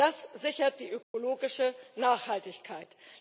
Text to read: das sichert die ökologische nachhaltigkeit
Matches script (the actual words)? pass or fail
pass